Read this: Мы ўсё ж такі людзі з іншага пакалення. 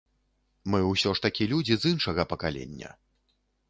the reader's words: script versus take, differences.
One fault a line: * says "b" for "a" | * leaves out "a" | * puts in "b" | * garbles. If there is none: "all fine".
all fine